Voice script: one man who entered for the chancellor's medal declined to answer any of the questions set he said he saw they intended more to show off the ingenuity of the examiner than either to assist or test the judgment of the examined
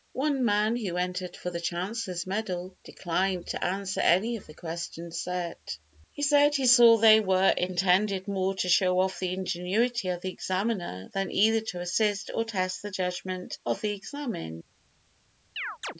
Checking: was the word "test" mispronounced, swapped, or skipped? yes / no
no